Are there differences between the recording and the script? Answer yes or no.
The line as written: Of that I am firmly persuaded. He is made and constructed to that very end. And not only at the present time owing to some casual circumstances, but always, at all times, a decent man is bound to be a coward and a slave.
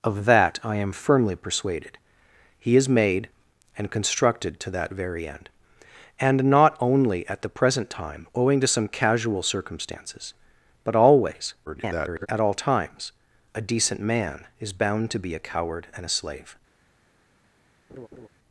yes